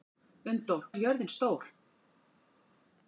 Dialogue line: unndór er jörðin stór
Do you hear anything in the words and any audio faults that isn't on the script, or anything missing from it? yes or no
no